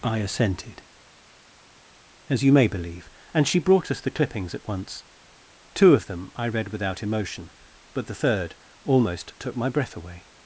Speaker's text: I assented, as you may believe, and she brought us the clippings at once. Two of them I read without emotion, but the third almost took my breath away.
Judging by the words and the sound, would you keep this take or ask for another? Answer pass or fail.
pass